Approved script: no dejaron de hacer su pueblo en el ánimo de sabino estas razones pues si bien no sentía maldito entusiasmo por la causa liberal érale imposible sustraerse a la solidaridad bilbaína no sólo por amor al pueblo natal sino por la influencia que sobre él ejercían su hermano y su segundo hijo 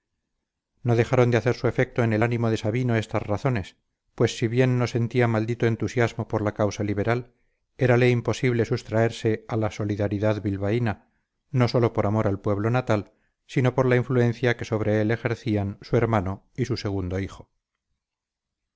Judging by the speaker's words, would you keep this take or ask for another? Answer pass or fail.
fail